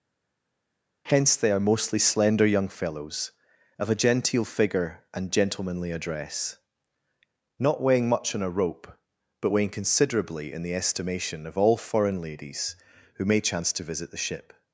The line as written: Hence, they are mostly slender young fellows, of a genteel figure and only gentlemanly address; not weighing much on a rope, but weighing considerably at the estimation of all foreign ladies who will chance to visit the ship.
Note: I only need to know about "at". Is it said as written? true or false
false